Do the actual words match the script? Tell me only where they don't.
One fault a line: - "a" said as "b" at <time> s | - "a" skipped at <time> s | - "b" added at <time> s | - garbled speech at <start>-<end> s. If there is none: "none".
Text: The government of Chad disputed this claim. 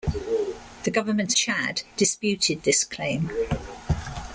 - "of" skipped at 1.4 s